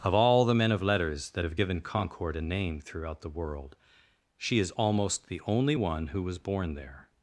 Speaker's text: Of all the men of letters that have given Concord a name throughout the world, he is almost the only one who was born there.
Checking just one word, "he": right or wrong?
wrong